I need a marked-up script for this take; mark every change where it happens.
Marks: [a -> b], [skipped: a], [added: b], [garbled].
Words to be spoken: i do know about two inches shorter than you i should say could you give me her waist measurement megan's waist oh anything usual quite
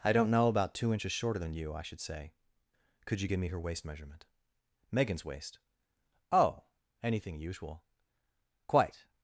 i [do -> don't] know about two inches shorter than you i should say could you give me her waist measurement megan's waist oh anything usual quite